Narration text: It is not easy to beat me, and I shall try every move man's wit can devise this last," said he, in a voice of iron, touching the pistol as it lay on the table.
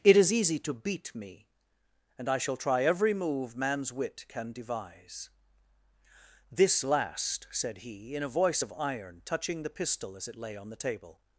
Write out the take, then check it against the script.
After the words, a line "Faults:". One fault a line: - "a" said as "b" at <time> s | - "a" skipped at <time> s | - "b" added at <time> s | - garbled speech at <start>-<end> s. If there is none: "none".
It is easy to beat me, and I shall try every move man's wit can devise this last," said he, in a voice of iron, touching the pistol as it lay on the table.
Faults:
- "not" skipped at 0.3 s